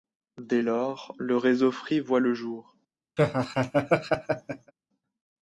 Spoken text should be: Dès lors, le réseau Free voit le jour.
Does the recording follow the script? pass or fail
pass